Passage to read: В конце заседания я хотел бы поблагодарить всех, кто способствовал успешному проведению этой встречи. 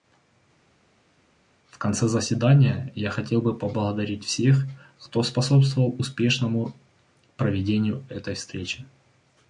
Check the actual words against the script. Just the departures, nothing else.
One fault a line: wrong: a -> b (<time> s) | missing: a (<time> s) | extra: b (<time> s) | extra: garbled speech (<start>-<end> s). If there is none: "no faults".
no faults